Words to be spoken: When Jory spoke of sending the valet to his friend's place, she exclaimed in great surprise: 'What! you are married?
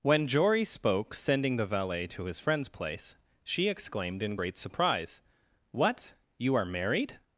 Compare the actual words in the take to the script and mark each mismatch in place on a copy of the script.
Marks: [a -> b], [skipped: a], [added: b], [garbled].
When Jory spoke [skipped: of] sending the valet to his friend's place, she exclaimed in great surprise: 'What! you are married?